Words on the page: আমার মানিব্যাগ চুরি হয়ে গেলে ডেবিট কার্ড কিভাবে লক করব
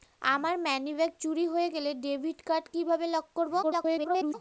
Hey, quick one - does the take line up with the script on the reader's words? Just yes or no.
no